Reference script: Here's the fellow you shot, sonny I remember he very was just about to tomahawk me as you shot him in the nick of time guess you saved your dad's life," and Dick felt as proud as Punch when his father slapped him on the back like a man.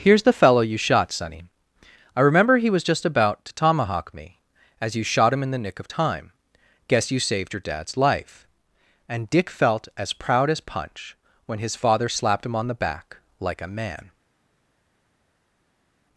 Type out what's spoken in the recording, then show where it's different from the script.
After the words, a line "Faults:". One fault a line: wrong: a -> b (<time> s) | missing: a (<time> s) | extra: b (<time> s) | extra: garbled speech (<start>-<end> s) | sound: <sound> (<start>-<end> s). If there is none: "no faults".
Here's the fellow you shot, sonny I remember he was just about to tomahawk me as you shot him in the nick of time guess you saved your dad's life," and Dick felt as proud as Punch when his father slapped him on the back like a man.
Faults:
missing: very (2.7 s)